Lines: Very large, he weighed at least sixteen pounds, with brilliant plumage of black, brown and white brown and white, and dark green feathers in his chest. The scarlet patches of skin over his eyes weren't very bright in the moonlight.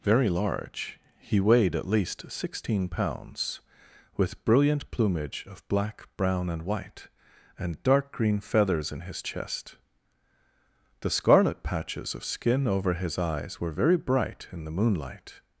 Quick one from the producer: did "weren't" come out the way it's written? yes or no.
no